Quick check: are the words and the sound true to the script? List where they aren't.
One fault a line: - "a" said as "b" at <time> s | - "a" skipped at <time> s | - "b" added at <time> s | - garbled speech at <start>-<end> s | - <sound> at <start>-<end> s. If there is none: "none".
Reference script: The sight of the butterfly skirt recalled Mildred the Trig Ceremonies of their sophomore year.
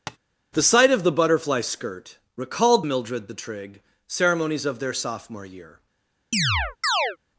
- tap at 0.1-0.2 s
- chirp at 6.3-7.2 s